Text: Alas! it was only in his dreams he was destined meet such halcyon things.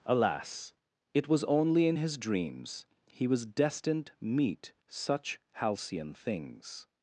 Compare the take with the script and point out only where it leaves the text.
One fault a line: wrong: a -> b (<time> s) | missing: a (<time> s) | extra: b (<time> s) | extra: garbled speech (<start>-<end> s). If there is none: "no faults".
no faults